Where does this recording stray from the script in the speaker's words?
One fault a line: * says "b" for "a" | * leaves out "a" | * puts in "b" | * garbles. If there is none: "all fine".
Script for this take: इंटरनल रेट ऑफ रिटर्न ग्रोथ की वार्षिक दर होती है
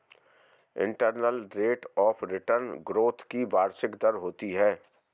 all fine